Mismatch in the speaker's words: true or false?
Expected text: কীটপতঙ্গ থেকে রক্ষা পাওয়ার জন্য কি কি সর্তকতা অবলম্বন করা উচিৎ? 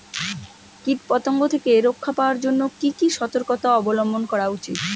false